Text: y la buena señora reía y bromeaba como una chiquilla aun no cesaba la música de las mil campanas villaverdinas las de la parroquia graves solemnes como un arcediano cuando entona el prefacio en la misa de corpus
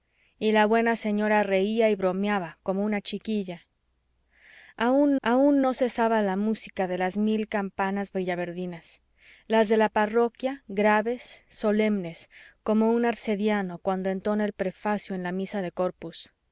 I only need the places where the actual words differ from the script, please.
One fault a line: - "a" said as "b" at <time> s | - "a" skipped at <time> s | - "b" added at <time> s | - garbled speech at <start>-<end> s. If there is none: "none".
- "aun" added at 5.2 s